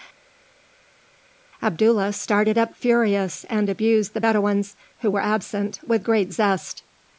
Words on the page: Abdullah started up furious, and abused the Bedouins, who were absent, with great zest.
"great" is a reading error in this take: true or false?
false